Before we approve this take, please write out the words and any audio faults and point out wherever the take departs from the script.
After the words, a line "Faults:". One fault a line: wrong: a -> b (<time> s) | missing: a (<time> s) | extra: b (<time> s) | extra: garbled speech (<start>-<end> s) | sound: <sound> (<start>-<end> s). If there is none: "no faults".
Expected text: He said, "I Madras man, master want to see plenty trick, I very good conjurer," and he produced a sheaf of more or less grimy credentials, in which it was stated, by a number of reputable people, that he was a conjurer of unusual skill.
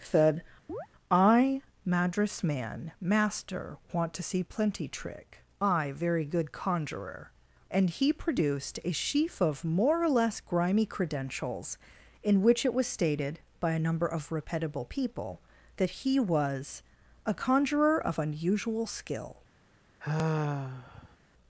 said, "I Madras man, master want to see plenty trick, I very good conjurer," and he produced a sheaf of more or less grimy credentials, in which it was stated, by a number of reputable people, that he was a conjurer of unusual skill.
Faults:
missing: He (0.0 s)
sound: chirp (0.7-0.9 s)
sound: sigh (20.0-21.2 s)